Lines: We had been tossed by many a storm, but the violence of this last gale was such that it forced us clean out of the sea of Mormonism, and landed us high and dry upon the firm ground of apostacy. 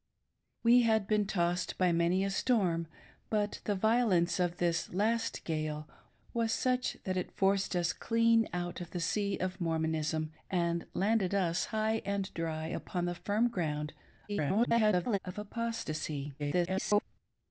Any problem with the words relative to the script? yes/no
yes